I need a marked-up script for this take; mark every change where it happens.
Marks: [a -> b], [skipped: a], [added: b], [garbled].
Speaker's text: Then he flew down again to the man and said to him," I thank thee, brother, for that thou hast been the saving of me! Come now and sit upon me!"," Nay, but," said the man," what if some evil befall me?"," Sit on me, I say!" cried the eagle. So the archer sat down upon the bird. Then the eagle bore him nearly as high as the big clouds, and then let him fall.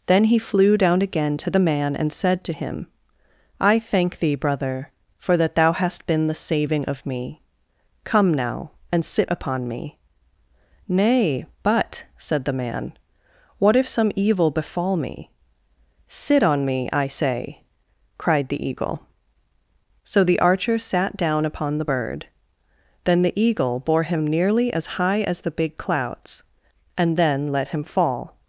Then he flew down again to the man and said to him," I thank thee, brother, for that thou hast been the saving of me! Come now and sit upon me!"," Nay, but," said the man," what if some evil befall me?"," Sit on me, I say!" cried the eagle. So the archer sat down upon the bird. Then the eagle bore him nearly as high as the big clouds, and then let him fall.